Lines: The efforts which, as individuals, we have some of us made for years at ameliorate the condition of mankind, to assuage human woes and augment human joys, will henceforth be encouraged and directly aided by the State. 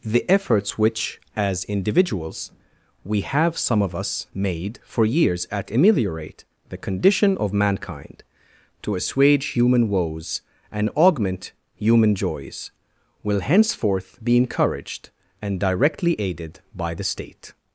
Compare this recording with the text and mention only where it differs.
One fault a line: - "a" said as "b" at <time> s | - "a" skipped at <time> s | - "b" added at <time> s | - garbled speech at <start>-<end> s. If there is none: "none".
none